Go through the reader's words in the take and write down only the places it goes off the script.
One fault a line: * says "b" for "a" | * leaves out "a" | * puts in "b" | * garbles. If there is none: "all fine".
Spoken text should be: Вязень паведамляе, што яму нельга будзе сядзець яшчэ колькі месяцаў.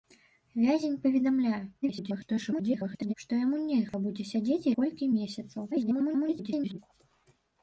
* garbles
* leaves out "яшчэ"
* garbles